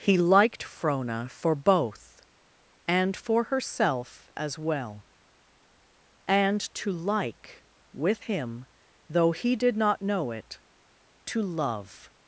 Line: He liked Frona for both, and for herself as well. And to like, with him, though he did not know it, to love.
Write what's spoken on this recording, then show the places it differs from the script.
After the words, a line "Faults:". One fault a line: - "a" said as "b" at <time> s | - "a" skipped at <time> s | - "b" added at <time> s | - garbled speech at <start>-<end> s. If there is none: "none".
He liked Frona for both, and for herself as well. And to like, with him, though he did not know it, to love.
Faults:
none